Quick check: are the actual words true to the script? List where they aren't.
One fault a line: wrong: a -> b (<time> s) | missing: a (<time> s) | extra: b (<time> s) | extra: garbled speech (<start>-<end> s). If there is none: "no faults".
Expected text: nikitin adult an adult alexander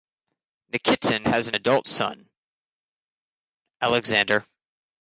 wrong: adult -> has (1.2 s)
extra: son (1.9 s)